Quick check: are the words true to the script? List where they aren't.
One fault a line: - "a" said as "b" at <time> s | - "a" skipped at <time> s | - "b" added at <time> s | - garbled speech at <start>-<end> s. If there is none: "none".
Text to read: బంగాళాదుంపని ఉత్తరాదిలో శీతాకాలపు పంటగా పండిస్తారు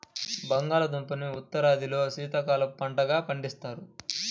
none